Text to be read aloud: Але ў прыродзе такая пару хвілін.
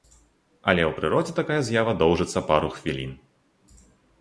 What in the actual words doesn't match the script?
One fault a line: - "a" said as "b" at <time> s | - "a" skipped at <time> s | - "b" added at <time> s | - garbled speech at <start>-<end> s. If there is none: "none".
- "з'ява доўжыцца" added at 1.7 s